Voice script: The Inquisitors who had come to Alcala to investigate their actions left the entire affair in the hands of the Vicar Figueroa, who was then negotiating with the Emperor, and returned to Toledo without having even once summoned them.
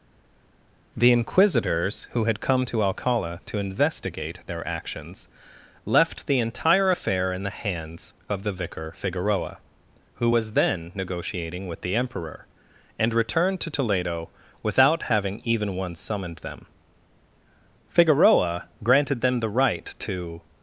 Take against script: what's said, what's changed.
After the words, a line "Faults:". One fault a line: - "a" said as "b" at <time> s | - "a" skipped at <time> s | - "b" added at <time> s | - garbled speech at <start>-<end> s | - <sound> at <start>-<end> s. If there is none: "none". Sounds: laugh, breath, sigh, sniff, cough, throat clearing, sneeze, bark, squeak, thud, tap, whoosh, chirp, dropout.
The Inquisitors who had come to Alcala to investigate their actions left the entire affair in the hands of the Vicar Figueroa, who was then negotiating with the Emperor, and returned to Toledo without having even once summoned them. Figueroa granted them the right to
Faults:
- "Figueroa granted them the right to" added at 17.9 s